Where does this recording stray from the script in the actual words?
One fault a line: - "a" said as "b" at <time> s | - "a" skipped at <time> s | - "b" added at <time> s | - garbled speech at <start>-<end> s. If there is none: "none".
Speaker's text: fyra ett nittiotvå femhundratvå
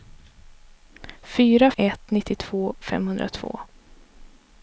none